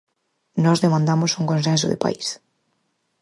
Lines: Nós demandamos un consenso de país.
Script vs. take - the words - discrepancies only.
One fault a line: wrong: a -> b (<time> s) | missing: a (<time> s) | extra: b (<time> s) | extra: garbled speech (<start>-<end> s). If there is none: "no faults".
no faults